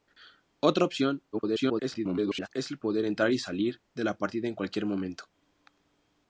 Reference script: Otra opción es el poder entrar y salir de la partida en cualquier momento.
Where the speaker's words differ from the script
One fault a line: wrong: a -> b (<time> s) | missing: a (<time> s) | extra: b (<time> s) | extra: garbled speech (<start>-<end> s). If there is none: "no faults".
extra: garbled speech (1.3-2.5 s)